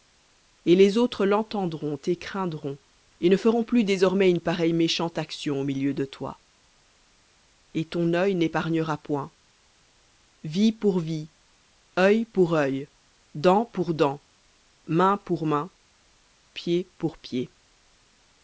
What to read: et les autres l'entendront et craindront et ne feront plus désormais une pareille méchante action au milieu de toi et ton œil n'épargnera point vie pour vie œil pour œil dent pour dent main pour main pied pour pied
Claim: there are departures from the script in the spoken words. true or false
false